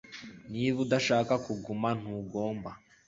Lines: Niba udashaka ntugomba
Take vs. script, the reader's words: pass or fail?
fail